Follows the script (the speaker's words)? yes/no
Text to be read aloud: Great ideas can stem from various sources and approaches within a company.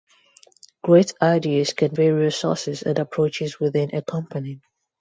no